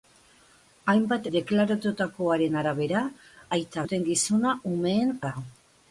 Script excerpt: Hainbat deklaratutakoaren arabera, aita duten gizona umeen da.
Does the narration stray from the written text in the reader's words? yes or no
no